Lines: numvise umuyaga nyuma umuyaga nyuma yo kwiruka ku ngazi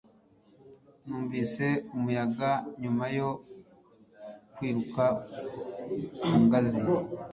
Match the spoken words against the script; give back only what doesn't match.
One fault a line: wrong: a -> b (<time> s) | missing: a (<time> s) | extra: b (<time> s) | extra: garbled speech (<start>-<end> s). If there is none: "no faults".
missing: umuyaga nyuma (3.0 s)